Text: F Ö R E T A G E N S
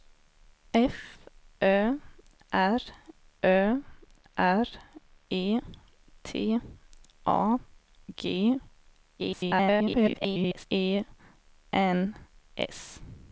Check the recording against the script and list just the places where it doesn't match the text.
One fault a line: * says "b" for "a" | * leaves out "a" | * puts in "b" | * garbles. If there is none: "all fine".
* puts in "Ö R"
* garbles